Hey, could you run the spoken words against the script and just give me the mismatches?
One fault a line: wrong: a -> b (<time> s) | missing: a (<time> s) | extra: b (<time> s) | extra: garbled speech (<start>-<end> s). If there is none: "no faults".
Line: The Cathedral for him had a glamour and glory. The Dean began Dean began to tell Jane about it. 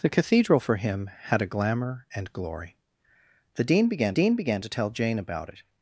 no faults